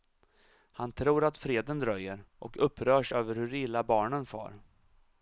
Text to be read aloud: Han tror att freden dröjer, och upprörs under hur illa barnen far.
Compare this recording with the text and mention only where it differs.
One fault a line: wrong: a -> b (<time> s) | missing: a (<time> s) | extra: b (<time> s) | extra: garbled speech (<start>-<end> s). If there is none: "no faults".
wrong: under -> över (3.1 s)